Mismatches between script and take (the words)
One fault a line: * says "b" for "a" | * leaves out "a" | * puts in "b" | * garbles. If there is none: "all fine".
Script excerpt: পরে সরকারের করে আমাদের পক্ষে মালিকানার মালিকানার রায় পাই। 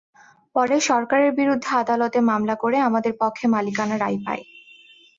* puts in "বিরুদ্ধে আদালতে মামলা"
* leaves out "মালিকানার"